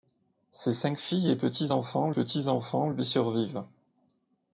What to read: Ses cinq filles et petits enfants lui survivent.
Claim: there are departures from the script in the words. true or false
true